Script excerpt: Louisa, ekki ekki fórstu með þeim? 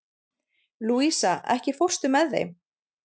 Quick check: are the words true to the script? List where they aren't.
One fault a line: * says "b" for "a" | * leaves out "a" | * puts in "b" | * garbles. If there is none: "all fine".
* leaves out "ekki"